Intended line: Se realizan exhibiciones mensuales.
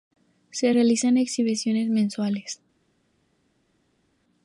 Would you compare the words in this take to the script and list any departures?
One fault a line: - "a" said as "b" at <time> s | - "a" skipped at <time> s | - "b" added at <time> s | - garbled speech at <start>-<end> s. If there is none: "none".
none